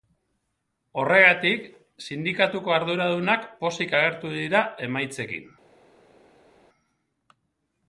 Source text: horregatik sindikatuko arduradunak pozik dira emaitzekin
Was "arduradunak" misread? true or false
false